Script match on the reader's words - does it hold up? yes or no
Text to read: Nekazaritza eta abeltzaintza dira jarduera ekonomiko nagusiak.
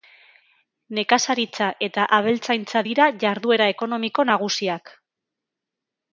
yes